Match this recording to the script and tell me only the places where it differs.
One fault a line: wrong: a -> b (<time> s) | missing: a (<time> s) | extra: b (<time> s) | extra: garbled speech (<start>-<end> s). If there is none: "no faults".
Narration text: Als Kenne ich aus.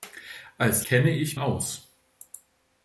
no faults